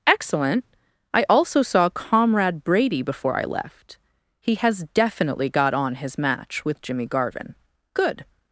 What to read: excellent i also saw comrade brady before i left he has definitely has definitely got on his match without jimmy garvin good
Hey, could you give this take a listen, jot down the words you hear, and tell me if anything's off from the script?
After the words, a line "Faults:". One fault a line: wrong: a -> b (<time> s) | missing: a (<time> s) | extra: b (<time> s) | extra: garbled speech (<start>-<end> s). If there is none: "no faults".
excellent i also saw comrade brady before i left he has definitely got on his match with jimmy garvin good
Faults:
missing: has definitely (5.5 s)
wrong: without -> with (6.7 s)